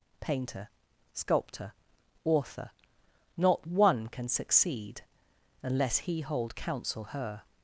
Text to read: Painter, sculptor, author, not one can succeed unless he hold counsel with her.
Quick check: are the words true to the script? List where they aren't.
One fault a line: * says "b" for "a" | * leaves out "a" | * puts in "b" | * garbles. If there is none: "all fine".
* leaves out "with"